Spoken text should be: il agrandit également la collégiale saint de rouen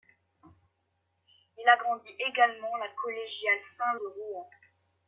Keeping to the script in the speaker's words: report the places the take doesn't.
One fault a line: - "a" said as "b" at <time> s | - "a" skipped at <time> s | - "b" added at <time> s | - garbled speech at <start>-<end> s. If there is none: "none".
none